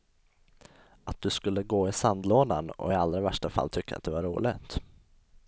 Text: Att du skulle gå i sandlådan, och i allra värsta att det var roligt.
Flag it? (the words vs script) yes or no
yes